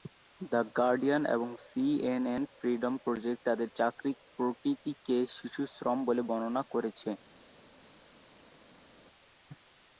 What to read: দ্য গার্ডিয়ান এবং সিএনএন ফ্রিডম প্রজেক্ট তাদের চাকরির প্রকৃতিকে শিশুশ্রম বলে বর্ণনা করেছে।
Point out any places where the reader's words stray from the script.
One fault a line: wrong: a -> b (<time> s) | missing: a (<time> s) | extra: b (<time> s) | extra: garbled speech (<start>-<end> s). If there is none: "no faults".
no faults